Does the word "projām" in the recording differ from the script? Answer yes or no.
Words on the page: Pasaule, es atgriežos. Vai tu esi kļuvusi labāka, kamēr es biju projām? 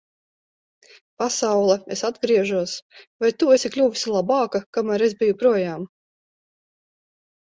no